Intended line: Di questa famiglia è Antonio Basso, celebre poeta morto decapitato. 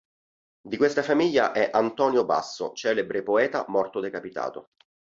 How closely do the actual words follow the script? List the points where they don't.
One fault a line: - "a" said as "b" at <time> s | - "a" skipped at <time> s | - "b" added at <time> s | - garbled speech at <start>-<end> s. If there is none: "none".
none